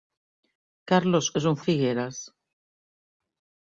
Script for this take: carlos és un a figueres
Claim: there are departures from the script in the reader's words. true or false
false